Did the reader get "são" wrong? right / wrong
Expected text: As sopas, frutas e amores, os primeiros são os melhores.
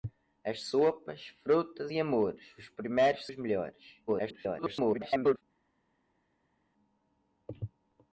wrong